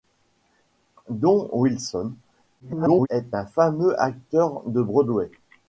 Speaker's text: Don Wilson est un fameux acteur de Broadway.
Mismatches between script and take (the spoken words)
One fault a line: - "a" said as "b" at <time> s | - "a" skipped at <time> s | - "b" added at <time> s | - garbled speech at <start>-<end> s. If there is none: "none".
- garbled speech at 2.6-3.1 s